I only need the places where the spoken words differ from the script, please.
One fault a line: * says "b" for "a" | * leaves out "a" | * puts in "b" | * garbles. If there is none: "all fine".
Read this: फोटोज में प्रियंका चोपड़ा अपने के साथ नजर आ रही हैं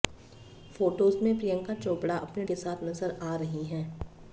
all fine